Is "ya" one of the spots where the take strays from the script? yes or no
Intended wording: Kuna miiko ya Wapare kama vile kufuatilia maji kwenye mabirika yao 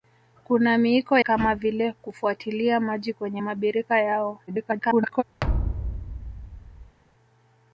yes